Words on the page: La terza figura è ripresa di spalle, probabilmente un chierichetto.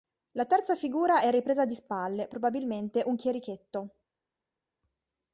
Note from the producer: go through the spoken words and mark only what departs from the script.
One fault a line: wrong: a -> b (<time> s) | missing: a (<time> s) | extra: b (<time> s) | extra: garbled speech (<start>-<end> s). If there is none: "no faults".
no faults